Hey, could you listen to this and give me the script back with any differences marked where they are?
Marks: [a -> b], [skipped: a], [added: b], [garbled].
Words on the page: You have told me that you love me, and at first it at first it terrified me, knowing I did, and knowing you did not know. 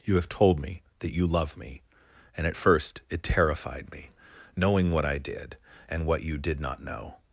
You have told me that you love me, and at first it [skipped: at first it] terrified me, knowing [added: what] I did, and [knowing -> what] you did not know.